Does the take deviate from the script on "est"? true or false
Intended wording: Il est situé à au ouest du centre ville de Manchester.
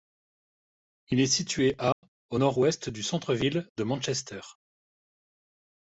false